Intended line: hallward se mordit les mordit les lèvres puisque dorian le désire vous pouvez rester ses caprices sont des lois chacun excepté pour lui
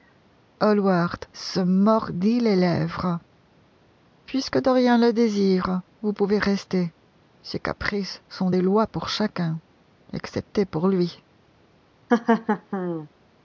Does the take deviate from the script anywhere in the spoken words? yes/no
yes